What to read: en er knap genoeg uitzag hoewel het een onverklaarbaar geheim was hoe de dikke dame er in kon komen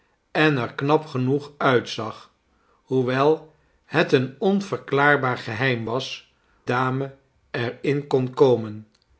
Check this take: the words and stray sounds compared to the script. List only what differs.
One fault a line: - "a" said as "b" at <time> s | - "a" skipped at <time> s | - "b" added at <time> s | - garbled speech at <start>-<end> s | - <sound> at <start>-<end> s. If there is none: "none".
- "hoe de dikke" skipped at 6.3 s